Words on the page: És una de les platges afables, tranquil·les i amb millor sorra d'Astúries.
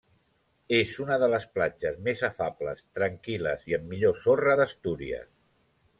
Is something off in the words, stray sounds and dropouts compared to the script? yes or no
yes